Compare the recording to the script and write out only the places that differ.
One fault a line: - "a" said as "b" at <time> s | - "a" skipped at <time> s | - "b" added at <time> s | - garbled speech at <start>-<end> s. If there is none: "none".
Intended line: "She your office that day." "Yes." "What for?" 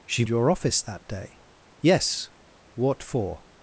none